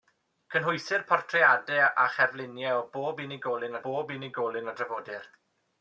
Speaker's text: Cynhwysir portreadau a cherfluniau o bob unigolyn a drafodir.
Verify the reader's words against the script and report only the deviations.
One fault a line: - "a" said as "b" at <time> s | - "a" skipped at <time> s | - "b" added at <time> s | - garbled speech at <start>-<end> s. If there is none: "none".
- "bob unigolyn" added at 3.9 s